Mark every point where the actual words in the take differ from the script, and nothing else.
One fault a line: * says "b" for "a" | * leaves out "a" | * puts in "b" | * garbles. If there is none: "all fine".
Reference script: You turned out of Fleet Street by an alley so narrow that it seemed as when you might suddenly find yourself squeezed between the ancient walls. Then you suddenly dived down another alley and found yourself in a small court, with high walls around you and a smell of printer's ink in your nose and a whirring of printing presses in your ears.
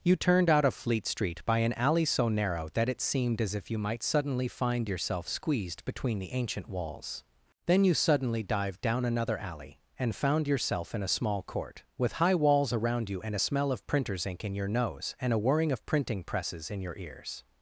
* says "if" for "when"